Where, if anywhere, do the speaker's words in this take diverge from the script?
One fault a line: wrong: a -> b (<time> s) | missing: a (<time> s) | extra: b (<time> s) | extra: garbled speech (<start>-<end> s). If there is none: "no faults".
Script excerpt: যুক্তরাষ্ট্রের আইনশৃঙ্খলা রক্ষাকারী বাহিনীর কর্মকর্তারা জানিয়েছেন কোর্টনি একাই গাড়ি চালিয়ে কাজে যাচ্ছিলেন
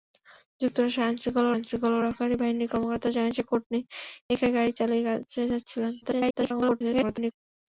extra: আইনশৃঙ্খলা (1.5 s)
extra: garbled speech (6.0-7.3 s)